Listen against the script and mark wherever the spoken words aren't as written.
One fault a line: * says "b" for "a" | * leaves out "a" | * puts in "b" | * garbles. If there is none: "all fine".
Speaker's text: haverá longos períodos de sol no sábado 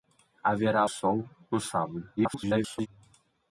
* leaves out "longos períodos de"
* garbles